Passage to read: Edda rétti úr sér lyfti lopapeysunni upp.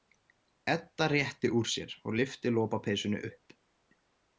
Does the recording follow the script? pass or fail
fail